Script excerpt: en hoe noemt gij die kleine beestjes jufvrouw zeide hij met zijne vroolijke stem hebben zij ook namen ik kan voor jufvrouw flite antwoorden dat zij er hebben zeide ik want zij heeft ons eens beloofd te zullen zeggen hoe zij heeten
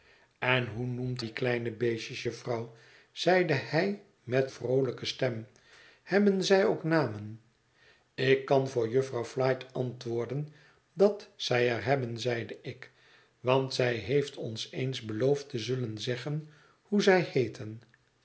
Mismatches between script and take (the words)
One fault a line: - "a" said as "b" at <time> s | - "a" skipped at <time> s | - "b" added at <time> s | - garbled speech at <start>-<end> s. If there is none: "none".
- "gij" skipped at 1.2 s
- "zijne" skipped at 4.5 s